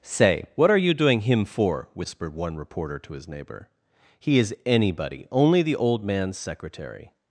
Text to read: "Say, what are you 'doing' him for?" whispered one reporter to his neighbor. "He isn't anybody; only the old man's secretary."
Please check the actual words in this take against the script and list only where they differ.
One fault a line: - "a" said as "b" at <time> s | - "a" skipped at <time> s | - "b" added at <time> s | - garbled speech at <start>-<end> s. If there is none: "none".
- "isn't" said as "is" at 4.4 s